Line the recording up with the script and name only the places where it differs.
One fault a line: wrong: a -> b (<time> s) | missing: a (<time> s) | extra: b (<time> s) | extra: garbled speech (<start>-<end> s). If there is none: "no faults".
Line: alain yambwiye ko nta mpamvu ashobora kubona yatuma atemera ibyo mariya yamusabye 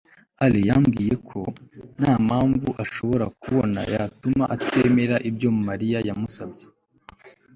no faults